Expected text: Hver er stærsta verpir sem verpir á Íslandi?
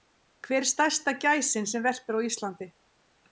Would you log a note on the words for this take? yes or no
yes